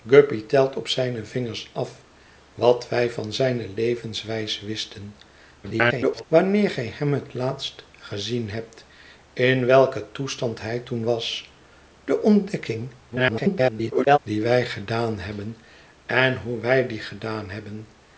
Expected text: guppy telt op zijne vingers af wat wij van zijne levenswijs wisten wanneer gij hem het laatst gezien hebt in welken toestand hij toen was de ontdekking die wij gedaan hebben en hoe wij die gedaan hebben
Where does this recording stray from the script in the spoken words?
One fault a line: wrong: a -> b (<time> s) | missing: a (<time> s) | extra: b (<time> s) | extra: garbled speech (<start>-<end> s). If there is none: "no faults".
extra: garbled speech (5.6-6.2 s)
extra: garbled speech (13.1-14.2 s)